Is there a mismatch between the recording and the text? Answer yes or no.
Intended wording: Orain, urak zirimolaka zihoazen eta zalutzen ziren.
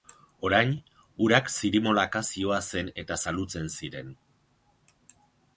no